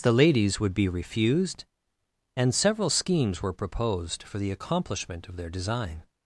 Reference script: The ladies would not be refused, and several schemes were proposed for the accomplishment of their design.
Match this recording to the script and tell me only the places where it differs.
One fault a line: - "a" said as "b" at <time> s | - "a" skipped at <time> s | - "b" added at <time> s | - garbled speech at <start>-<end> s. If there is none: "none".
- "not" skipped at 0.7 s